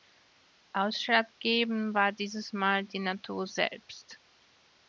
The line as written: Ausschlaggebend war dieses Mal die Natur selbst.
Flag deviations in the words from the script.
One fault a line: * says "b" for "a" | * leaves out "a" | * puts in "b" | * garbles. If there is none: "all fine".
all fine